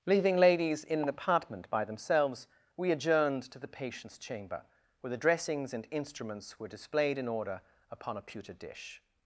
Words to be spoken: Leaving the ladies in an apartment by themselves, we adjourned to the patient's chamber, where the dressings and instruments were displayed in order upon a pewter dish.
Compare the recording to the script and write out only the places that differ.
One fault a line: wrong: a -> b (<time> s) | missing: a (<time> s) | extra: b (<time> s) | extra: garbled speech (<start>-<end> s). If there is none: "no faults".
missing: the (0.3 s)